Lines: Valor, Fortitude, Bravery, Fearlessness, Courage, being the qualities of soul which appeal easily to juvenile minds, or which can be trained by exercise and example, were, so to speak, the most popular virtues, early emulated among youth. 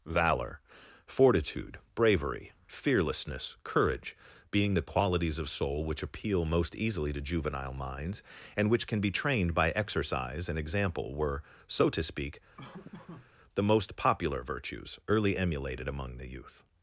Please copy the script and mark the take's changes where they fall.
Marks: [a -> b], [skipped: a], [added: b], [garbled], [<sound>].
Valor, Fortitude, Bravery, Fearlessness, Courage, being the qualities of soul which appeal [added: most] easily to juvenile minds, [or -> and] which can be trained by exercise and example, were, so to speak, [laugh] the most popular virtues, early emulated among [added: the] youth.